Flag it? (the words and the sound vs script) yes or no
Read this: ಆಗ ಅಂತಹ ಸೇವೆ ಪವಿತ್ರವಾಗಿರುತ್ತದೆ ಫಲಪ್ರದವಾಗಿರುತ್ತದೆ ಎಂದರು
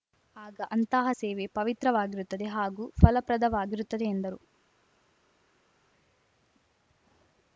yes